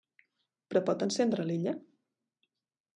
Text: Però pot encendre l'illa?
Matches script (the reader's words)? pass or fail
pass